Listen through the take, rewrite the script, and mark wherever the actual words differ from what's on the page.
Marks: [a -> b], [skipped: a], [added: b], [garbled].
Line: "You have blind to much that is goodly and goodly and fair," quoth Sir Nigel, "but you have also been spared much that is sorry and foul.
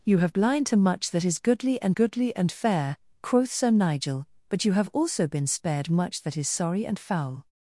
"You have blind to much that is goodly and goodly and fair," quoth Sir Nigel, "but you have also been spared much that is sorry and foul.